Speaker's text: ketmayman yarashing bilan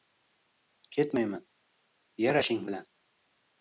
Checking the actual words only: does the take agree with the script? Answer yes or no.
yes